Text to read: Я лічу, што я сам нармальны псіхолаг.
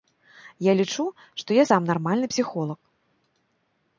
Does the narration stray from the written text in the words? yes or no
no